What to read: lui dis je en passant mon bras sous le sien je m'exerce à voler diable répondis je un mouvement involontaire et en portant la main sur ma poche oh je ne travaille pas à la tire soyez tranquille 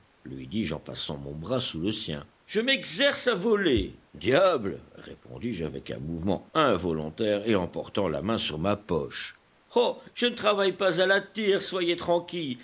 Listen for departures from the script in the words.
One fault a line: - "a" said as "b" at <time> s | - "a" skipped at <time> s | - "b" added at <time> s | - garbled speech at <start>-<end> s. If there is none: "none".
- "avec" added at 5.7 s